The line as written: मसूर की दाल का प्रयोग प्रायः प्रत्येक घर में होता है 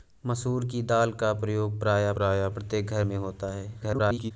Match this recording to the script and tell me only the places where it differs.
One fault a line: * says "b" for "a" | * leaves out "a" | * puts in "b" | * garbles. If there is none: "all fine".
* puts in "प्रायः"
* garbles